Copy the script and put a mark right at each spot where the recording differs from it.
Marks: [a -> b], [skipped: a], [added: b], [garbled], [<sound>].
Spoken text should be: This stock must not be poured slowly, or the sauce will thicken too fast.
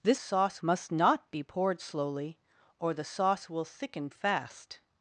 This [stock -> sauce] must not be poured slowly, or the sauce will thicken [skipped: too] fast.